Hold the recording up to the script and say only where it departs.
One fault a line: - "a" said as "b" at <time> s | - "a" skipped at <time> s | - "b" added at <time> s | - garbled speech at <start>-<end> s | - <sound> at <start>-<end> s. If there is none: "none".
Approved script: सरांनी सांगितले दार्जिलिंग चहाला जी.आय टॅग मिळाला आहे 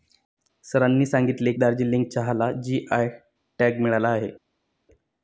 none